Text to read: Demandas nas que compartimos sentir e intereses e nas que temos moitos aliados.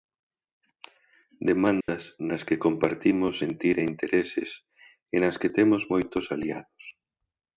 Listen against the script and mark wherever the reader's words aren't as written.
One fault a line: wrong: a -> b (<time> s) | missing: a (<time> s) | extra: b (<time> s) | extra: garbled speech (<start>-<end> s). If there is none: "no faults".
no faults